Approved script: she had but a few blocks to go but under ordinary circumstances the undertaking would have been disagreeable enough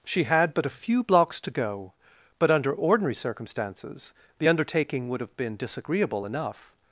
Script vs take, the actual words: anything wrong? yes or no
no